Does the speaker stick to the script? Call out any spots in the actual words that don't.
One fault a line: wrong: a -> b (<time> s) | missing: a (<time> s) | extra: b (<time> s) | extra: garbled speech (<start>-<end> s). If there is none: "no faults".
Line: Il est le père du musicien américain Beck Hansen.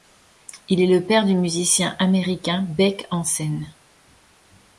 no faults